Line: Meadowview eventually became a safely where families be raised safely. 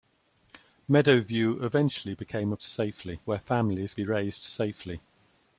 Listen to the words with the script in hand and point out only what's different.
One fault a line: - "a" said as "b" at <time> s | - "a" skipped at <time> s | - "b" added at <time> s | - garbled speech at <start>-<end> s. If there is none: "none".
none